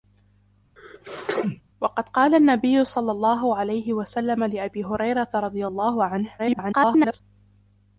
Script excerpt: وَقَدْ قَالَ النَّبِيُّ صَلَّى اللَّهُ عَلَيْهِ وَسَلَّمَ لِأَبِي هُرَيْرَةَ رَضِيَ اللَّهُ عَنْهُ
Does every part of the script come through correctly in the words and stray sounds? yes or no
no